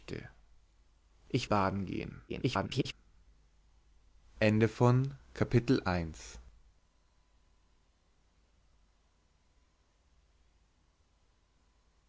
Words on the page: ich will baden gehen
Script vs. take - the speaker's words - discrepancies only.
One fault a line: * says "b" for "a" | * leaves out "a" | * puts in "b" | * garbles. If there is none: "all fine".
* leaves out "will"
* garbles